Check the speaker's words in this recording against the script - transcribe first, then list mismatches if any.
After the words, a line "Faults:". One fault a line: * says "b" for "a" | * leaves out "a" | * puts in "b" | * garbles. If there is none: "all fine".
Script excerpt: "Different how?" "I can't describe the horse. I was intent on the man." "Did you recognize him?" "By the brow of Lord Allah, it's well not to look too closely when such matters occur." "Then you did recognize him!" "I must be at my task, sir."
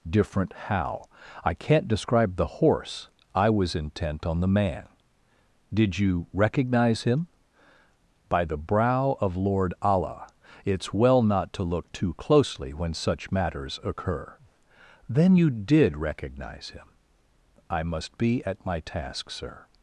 "Different how?" "I can't describe the horse. I was intent on the man." "Did you recognize him?" "By the brow of Lord Allah, it's well not to look too closely when such matters occur." "Then you did recognize him!" "I must be at my task, sir."
Faults:
all fine